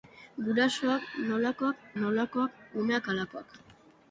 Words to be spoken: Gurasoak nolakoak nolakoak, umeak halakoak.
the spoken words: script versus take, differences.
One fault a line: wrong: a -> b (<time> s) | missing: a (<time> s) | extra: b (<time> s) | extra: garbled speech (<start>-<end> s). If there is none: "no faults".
no faults